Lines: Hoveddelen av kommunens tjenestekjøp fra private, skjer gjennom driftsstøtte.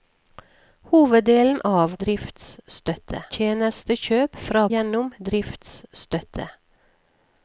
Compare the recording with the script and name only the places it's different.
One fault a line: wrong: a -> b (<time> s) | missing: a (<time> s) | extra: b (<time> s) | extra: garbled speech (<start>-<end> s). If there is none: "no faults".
wrong: kommunens -> driftsstøtte (2.1 s)
missing: private skjer (4.6 s)